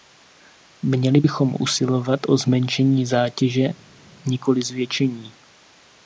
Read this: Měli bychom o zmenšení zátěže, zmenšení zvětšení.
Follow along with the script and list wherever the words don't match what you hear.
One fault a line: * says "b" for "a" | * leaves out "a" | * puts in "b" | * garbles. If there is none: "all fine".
* puts in "usilovat"
* says "nikoli" for "zmenšení"